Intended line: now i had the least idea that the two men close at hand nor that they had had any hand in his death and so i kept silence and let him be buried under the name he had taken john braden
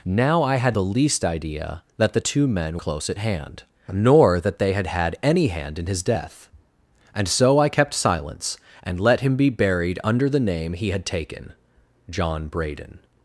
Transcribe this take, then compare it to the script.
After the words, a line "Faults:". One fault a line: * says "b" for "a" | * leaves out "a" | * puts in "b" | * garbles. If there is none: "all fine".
now i had the least idea that the two men close at hand nor that they had had any hand in his death and so i kept silence and let him be buried under the name he had taken john braden
Faults:
all fine